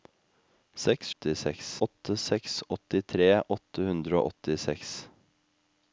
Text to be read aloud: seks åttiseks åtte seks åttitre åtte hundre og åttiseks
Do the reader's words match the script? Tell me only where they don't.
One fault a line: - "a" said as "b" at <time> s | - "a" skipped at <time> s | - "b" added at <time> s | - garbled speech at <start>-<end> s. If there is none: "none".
none